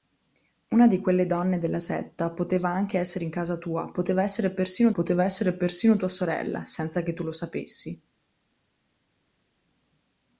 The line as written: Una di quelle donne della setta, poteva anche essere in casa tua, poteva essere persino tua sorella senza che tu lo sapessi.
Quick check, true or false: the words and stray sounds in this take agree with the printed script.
false